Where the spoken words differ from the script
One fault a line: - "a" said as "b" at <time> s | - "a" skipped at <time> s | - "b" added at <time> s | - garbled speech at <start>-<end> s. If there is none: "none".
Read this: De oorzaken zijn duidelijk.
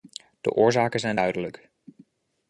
none